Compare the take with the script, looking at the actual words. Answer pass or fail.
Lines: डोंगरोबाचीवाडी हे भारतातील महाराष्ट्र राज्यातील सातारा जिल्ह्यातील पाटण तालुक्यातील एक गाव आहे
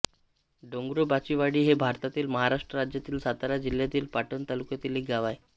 pass